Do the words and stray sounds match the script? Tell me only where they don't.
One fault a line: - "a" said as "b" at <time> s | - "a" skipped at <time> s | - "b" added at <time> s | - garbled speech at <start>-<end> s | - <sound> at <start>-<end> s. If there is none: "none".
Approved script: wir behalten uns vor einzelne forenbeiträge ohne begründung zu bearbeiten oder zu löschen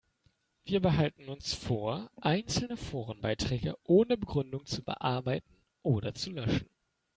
none